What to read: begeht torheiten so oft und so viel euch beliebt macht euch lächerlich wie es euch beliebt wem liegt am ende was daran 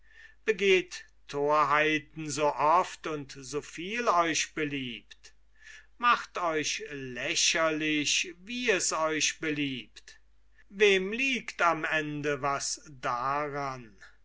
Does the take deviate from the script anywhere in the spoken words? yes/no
no